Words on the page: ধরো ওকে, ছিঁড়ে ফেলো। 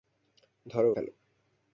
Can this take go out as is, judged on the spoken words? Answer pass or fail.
fail